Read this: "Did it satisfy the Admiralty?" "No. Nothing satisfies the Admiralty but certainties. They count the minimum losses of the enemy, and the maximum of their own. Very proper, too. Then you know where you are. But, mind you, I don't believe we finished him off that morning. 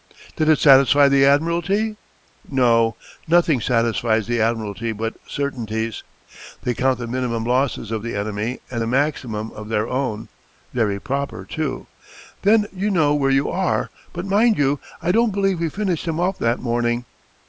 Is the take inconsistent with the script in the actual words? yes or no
no